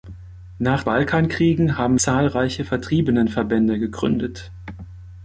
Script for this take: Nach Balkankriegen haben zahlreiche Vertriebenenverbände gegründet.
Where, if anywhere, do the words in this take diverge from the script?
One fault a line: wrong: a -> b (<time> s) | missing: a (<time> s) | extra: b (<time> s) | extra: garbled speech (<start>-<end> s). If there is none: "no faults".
no faults